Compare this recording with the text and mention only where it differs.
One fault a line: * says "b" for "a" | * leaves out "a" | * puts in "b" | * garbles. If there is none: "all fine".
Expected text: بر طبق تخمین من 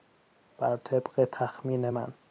all fine